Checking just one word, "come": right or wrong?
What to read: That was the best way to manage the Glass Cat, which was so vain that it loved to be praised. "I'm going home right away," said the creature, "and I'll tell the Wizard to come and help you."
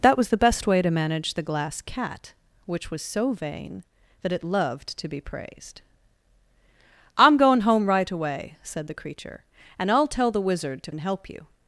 wrong